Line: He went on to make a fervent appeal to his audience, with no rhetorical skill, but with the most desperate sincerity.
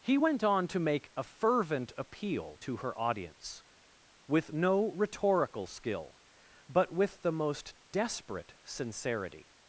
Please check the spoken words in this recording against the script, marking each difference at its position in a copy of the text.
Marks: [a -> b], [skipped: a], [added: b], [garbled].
He went on to make a fervent appeal to [his -> her] audience, with no rhetorical skill, but with the most desperate sincerity.